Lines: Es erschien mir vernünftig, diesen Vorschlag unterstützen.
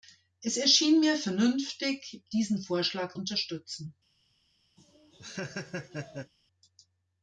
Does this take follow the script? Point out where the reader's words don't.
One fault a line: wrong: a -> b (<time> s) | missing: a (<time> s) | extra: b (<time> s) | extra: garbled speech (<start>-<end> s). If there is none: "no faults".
no faults